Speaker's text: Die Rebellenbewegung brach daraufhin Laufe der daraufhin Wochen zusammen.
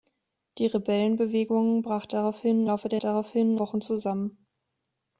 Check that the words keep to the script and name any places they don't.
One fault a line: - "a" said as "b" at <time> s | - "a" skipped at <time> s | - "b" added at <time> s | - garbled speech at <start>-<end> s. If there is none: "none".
none